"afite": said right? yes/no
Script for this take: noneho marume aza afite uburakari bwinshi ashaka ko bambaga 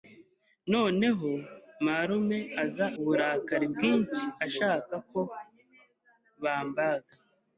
no